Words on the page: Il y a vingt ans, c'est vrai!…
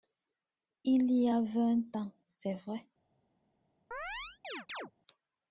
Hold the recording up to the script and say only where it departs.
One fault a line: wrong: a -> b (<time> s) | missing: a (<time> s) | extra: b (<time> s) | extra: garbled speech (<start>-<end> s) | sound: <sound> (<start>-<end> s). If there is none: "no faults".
sound: chirp (3.9-4.9 s)